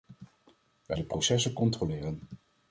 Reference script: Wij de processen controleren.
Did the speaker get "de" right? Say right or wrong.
right